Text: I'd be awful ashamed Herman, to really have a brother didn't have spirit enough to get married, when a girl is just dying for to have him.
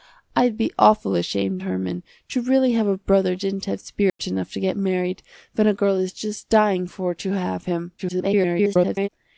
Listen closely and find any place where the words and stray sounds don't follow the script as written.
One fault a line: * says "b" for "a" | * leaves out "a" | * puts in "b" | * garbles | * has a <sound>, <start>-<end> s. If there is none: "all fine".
* has a dropout, 4.1-4.2 s
* garbles